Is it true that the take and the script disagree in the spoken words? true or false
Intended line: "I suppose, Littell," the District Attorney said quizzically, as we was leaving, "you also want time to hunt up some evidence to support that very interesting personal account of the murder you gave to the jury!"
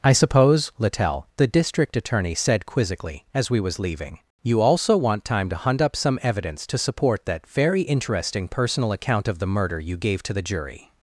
false